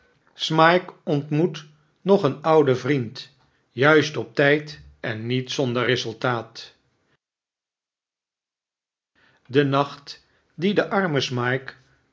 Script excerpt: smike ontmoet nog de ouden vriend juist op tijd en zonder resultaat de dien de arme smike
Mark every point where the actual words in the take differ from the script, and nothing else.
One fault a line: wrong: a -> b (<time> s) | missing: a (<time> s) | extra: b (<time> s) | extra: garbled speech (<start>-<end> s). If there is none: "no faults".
wrong: de -> een (2.2 s)
extra: niet (5.2 s)
extra: nacht (9.6 s)